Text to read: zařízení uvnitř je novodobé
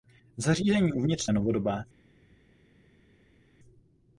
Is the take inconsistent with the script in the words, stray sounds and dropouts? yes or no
no